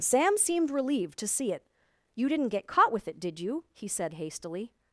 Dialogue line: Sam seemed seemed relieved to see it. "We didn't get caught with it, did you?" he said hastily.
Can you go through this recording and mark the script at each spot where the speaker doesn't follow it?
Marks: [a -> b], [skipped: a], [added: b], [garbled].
Sam seemed [skipped: seemed] relieved to see it. ["We -> You] didn't get caught with it, did you?" he said hastily.